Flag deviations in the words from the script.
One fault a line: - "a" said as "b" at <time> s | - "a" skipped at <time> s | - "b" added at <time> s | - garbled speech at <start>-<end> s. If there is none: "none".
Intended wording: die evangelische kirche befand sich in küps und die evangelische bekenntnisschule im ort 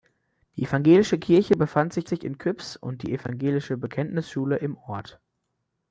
- "sich" added at 2.1 s